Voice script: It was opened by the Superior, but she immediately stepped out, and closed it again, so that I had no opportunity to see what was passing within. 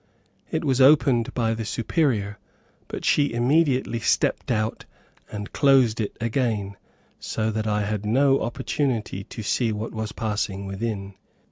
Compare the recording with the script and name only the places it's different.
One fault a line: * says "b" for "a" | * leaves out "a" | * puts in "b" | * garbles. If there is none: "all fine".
all fine